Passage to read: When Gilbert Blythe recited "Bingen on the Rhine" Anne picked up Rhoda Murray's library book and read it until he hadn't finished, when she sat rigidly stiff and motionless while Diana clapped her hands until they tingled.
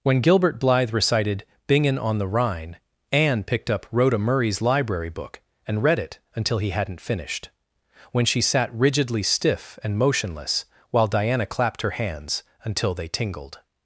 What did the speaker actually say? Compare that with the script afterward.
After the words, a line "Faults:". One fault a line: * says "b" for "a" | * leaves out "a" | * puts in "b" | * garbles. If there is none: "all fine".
When Gilbert Blythe recited "Bingen on the Rhine" Anne picked up Rhoda Murray's library book and read it until he hadn't finished, when she sat rigidly stiff and motionless while Diana clapped her hands until they tingled.
Faults:
all fine